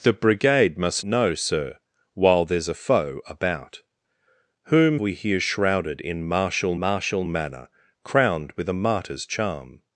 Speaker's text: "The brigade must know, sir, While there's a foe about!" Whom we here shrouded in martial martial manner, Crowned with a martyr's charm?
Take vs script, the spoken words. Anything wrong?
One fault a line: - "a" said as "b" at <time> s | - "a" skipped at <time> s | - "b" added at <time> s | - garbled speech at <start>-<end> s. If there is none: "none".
none